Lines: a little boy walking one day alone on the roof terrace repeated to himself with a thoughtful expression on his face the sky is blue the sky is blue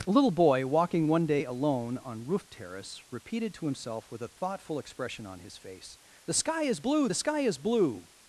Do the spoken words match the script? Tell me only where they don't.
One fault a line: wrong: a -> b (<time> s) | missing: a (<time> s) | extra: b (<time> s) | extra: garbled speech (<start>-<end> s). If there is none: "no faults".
missing: the (2.2 s)